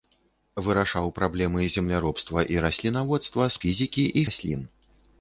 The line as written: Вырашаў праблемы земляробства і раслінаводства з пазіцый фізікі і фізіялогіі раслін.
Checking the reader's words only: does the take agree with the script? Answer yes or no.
no